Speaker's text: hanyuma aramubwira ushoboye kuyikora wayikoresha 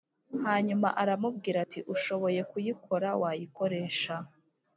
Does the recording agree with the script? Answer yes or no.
no